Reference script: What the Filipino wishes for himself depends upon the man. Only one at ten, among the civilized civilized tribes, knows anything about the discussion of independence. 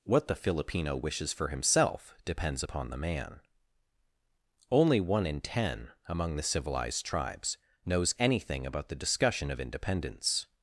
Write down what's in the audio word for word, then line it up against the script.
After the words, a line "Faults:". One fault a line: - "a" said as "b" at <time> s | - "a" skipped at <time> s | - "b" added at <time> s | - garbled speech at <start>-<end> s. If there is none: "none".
What the Filipino wishes for himself depends upon the man. Only one in ten, among the civilized tribes, knows anything about the discussion of independence.
Faults:
- "at" said as "in" at 5.3 s
- "civilized" skipped at 7.0 s